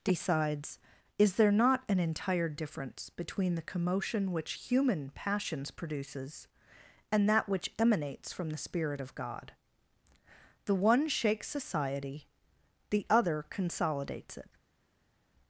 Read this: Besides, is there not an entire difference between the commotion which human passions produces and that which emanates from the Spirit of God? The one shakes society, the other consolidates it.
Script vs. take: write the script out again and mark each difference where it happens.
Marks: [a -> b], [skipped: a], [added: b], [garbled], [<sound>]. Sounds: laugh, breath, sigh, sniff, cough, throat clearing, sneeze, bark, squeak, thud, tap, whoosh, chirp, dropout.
[Besides, -> Decides] is there not an entire difference between the commotion which human passions produces and that which emanates from the Spirit of God? The one shakes society, the other consolidates it.